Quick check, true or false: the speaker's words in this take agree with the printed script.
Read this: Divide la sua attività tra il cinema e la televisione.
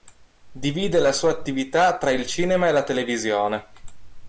true